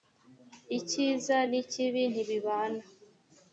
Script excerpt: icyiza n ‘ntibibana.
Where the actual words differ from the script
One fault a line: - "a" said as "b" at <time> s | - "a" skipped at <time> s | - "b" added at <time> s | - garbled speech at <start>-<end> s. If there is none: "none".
- "ikibi" added at 1.6 s